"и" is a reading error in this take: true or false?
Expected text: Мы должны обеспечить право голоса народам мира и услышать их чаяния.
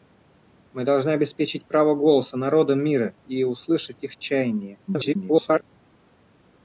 false